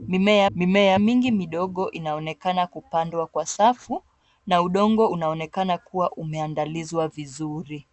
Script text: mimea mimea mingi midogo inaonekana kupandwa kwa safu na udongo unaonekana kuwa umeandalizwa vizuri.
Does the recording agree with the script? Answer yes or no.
yes